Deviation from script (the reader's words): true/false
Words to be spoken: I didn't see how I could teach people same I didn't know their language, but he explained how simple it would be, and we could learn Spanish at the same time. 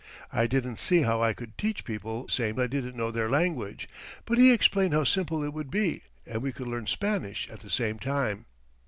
false